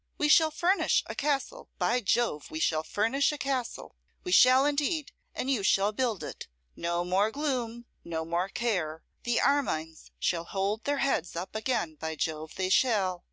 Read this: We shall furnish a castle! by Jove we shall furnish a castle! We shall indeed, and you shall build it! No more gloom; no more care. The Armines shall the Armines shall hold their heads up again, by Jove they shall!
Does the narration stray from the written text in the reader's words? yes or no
yes